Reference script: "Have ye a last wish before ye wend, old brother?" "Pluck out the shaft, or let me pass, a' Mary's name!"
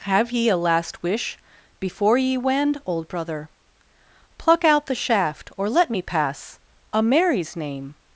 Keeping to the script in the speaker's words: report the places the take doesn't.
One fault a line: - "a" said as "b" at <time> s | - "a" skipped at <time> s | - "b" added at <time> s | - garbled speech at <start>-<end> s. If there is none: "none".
none